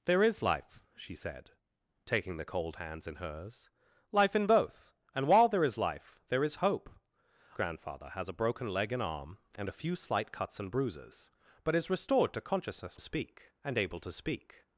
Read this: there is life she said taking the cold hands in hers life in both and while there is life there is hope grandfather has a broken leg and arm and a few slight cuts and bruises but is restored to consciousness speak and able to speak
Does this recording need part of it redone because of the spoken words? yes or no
no